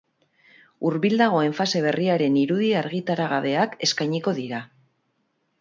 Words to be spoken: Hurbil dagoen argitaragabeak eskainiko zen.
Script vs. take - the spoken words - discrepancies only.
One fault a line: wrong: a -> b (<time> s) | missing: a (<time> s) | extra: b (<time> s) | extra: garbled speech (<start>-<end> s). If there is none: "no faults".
extra: fase berriaren irudi (1.6 s)
wrong: zen -> dira (4.4 s)